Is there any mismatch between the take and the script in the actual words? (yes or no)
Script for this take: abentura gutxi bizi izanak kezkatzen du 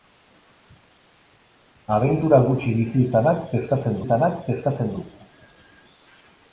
yes